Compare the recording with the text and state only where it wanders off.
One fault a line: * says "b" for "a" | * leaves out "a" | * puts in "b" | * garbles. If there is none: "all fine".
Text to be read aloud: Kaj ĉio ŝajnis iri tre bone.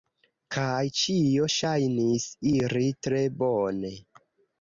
all fine